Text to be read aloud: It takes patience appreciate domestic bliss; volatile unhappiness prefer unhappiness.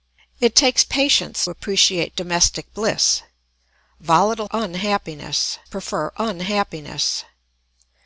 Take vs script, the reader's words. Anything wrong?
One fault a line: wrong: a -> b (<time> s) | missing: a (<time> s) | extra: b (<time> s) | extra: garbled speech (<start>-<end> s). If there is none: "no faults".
no faults